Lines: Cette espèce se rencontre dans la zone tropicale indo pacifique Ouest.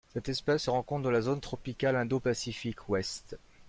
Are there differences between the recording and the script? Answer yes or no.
no